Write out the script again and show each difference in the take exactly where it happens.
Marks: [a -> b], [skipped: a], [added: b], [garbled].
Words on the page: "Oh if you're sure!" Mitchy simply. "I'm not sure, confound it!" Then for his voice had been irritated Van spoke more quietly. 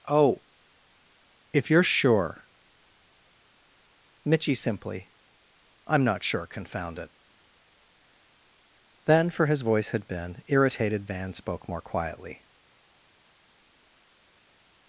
"Oh if you're sure!" Mitchy simply. "I'm not sure, confound it!" Then for his voice had been irritated Van spoke more quietly.